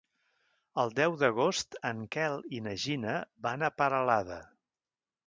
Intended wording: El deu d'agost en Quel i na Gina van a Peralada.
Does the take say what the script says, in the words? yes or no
yes